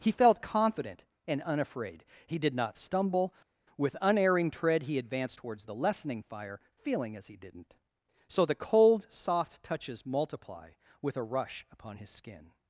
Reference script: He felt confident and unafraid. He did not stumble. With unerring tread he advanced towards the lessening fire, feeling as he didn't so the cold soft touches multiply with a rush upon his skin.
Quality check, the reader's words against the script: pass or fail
pass